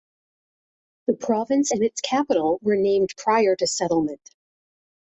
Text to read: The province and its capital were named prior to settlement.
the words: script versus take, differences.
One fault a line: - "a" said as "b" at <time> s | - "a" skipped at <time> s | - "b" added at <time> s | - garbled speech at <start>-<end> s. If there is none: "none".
none